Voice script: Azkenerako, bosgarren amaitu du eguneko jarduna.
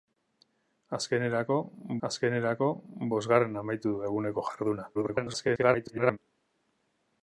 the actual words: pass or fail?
fail